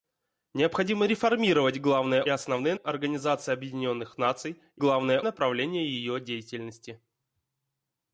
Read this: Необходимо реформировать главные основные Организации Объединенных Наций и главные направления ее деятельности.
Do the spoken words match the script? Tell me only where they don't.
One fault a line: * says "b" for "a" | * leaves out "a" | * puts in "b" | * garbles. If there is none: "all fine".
all fine